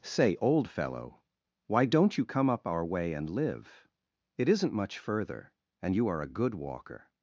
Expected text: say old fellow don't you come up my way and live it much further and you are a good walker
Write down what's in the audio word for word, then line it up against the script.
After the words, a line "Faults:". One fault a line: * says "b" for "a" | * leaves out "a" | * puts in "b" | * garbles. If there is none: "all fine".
say old fellow why don't you come up our way and live it isn't much further and you are a good walker
Faults:
* puts in "why"
* says "our" for "my"
* puts in "isn't"